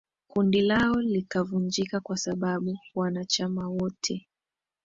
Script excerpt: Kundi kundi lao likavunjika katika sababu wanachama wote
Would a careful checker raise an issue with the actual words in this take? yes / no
yes